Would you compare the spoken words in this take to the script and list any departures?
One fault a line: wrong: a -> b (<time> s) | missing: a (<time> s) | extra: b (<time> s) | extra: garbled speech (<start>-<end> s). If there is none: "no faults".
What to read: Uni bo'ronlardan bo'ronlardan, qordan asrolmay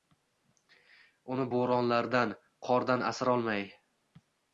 missing: bo'ronlardan (2.3 s)